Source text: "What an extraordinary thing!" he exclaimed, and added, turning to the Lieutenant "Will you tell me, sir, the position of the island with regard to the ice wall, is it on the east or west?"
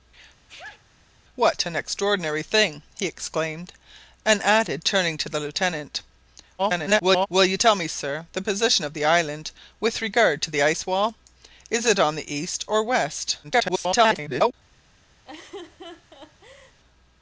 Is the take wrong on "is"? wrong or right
right